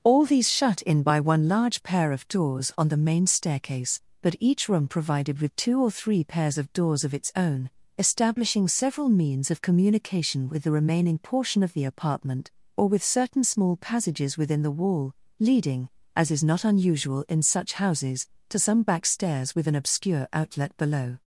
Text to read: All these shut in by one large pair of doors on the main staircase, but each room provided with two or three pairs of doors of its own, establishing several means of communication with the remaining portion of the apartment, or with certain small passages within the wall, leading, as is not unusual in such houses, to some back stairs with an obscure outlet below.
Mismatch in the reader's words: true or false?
false